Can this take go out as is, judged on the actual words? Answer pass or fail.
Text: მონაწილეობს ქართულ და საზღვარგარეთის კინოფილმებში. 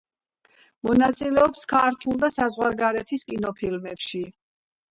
pass